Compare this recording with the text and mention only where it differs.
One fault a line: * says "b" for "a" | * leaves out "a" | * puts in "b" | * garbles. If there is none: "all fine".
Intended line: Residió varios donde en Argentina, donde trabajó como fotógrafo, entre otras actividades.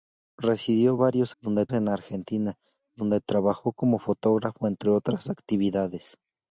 all fine